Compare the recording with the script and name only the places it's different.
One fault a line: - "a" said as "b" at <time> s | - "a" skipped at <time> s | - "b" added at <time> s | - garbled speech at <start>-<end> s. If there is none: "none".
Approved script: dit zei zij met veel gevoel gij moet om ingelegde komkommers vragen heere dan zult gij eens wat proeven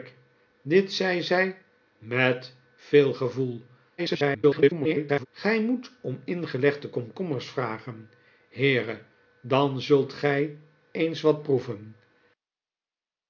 - garbled speech at 4.0-5.3 s